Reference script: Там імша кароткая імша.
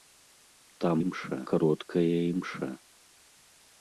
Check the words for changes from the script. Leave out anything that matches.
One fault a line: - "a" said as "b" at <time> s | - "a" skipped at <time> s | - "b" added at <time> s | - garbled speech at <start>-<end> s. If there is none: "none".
none